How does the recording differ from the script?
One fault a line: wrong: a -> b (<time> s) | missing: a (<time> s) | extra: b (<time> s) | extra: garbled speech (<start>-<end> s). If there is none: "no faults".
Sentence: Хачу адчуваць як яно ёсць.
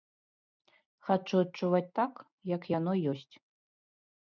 extra: так (2.0 s)